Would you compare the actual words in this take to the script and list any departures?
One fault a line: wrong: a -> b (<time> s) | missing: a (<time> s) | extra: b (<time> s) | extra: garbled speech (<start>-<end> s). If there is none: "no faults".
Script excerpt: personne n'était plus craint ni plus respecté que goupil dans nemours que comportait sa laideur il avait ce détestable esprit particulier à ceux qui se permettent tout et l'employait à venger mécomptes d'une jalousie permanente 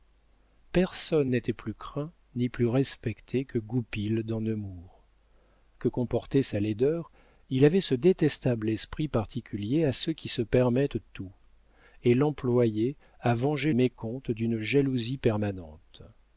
no faults